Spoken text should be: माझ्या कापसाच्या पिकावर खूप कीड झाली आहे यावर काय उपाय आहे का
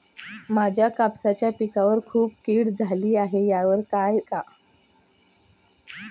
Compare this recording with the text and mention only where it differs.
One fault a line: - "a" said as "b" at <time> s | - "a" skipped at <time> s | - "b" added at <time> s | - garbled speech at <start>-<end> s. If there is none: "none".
- "उपाय आहे" skipped at 4.2 s